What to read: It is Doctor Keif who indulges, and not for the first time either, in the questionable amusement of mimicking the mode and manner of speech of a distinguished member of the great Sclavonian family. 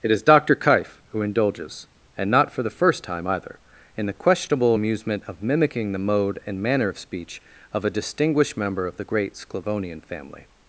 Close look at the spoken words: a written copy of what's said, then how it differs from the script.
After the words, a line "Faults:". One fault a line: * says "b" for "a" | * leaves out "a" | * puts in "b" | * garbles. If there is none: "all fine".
It is Doctor Keif who indulges, and not for the first time either, in the questionable amusement of mimicking the mode and manner of speech of a distinguished member of the great Sclavonian family.
Faults:
all fine